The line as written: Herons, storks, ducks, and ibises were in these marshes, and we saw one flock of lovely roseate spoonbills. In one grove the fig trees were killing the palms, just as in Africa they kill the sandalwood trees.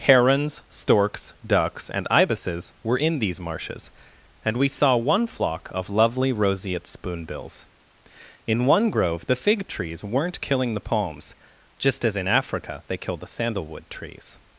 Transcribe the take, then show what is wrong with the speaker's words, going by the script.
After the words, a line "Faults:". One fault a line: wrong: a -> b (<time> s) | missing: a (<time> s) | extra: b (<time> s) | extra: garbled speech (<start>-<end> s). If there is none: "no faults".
Herons, storks, ducks, and ibises were in these marshes, and we saw one flock of lovely roseate spoonbills. In one grove the fig trees weren't killing the palms, just as in Africa they kill the sandalwood trees.
Faults:
wrong: were -> weren't (10.0 s)